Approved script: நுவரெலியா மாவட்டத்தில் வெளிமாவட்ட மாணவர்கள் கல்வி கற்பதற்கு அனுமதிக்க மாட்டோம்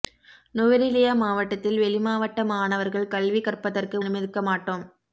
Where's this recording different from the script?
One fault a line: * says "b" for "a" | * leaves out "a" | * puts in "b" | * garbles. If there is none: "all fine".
all fine